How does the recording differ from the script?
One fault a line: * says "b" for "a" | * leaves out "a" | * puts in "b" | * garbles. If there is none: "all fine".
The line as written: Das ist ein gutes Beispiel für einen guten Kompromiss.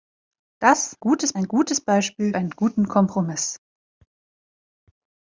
* says "gutes" for "ist"
* leaves out "für"